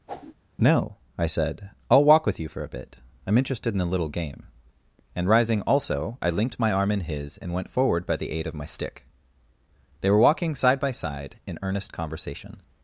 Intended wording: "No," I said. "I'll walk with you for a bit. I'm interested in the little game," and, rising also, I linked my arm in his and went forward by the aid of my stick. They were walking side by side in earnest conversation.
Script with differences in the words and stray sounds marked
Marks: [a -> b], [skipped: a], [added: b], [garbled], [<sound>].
[whoosh] "No," I said. "I'll walk with you for a bit. I'm interested in [the -> a] little game," and, rising also, I linked my arm in his and went forward by the aid of my stick. They were walking side by side in earnest conversation.